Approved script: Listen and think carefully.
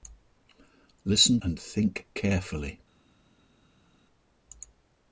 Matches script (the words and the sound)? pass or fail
pass